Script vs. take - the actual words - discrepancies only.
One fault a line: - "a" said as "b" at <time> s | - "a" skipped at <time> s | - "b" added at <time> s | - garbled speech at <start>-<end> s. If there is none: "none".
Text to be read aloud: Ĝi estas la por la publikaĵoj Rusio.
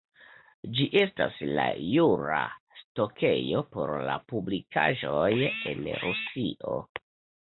- "jura stokejo" added at 1.9 s
- "en" added at 5.7 s